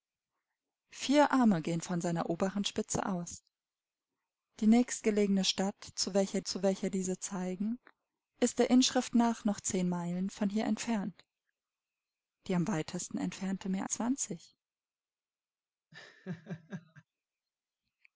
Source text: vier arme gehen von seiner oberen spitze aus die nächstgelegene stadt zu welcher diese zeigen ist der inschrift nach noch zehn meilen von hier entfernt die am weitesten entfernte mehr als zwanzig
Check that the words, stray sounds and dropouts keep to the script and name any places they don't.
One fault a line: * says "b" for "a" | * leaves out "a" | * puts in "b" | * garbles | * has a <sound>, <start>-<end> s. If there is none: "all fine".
* puts in "zu welcher"
* leaves out "als"
* has a laugh, 15.9-17.0 s